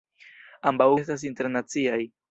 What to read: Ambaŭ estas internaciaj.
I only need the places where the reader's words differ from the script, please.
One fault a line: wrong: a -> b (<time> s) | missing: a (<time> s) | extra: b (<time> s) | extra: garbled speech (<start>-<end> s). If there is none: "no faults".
no faults